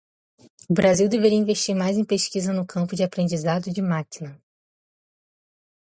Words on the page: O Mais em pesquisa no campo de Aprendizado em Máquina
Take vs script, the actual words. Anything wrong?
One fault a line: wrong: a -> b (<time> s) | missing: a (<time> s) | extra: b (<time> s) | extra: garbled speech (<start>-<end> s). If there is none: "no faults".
extra: Brasil deveria investir (0.7 s)
wrong: em -> de (3.7 s)